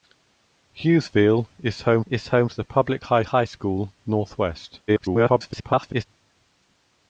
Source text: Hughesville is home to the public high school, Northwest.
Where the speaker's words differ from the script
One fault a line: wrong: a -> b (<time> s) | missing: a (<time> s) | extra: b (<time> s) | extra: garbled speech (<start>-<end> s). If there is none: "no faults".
extra: is home (2.1 s)
extra: high (3.3 s)
extra: garbled speech (4.9-6.0 s)